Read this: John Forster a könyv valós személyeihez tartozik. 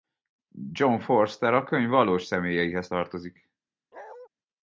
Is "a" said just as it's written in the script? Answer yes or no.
yes